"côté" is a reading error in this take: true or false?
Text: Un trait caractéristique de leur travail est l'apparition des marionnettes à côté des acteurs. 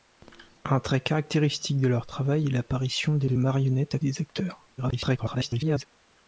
true